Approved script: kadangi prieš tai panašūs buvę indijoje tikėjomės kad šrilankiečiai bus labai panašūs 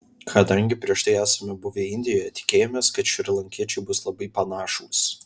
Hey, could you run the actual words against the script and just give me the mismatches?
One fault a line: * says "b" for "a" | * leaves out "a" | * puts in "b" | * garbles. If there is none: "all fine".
* says "esame" for "panašūs"